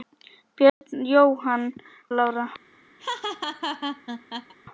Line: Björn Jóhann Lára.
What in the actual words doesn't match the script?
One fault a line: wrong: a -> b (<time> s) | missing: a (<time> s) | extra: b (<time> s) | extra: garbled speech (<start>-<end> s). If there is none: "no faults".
no faults